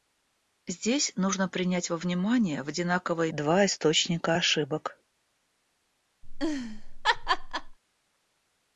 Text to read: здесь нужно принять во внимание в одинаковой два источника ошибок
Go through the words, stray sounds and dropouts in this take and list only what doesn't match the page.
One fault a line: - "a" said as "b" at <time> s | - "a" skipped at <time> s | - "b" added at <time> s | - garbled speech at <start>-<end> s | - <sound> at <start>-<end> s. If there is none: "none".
- laugh at 6.2-7.8 s